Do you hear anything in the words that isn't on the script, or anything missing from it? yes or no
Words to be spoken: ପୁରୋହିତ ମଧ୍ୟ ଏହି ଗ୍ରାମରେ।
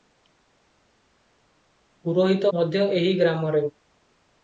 no